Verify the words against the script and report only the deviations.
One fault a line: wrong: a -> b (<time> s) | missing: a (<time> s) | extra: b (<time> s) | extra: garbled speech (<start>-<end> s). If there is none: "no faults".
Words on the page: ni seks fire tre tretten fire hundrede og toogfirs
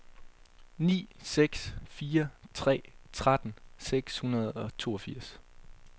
wrong: fire -> seks (3.8 s)